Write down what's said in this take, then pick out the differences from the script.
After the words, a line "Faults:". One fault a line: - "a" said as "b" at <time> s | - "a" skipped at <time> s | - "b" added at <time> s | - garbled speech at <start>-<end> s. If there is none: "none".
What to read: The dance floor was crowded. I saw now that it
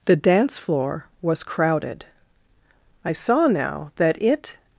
The dance floor was crowded. I saw now that it
Faults:
none